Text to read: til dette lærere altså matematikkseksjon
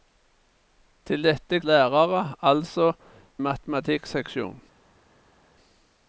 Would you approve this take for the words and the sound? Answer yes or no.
yes